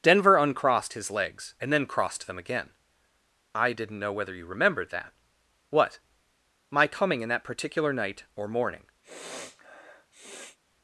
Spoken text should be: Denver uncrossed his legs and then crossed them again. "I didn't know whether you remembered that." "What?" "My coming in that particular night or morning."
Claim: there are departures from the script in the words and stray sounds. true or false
true